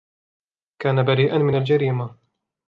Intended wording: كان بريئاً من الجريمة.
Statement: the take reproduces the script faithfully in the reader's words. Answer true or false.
true